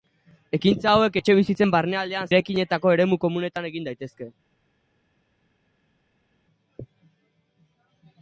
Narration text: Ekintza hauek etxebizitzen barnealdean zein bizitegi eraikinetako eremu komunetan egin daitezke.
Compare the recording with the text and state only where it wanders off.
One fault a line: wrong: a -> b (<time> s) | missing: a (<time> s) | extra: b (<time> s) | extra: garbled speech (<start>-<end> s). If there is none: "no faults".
missing: zein bizitegi (2.3 s)